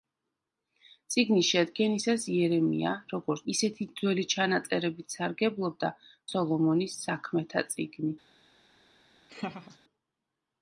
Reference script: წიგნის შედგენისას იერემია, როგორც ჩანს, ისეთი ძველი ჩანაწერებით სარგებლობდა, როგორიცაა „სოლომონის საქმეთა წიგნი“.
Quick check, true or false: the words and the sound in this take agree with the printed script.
false